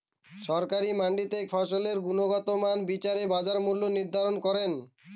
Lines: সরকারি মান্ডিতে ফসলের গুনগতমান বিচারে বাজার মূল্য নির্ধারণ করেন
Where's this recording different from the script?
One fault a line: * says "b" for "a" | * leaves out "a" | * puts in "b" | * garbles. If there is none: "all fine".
all fine